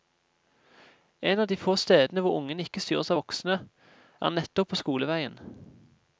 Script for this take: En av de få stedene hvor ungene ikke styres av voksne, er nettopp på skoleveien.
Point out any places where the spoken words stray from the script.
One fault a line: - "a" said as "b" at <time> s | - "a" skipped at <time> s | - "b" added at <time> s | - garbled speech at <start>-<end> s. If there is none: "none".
none